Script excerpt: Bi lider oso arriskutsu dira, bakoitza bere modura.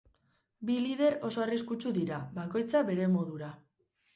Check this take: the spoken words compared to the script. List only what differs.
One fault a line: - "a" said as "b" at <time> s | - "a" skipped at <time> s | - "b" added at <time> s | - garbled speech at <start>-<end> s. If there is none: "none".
none